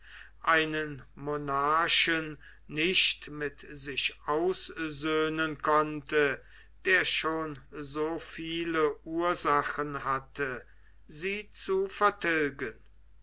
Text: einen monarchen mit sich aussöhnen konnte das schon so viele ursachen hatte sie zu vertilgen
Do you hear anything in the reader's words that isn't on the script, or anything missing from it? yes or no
yes